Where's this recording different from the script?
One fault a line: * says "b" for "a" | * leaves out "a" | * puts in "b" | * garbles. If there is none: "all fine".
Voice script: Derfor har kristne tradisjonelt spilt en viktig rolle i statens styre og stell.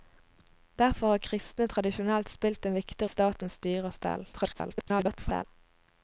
* leaves out "rolle"
* garbles